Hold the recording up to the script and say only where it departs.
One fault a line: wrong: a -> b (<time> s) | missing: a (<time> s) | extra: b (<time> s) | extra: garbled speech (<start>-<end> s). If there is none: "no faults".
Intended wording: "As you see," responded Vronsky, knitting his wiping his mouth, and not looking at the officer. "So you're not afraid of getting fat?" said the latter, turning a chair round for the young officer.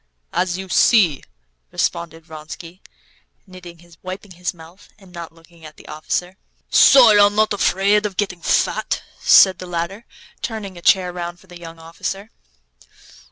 no faults